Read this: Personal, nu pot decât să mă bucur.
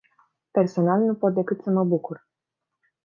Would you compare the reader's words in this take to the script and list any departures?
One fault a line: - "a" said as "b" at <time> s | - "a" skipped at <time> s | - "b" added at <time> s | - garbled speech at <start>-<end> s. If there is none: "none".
none